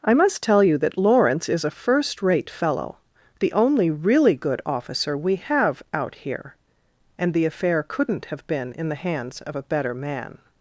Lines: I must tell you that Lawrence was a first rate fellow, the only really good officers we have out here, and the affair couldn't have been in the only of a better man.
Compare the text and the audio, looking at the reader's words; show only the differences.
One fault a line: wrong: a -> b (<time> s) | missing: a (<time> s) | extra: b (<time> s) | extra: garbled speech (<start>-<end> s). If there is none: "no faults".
wrong: was -> is (1.5 s)
wrong: officers -> officer (4.6 s)
wrong: only -> hands (8.9 s)